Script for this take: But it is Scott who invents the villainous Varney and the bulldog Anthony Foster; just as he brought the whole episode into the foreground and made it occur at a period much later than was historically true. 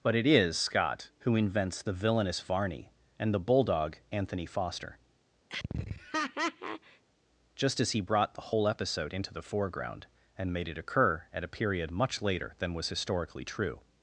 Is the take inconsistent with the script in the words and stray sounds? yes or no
yes